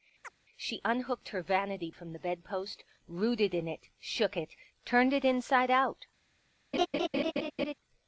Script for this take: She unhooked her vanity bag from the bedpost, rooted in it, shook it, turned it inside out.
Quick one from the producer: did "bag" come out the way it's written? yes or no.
no